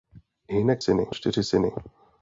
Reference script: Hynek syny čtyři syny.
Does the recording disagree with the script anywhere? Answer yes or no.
no